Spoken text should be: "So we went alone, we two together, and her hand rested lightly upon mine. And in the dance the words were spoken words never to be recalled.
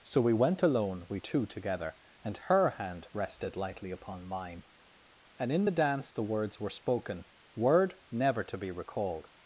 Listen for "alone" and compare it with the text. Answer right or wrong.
right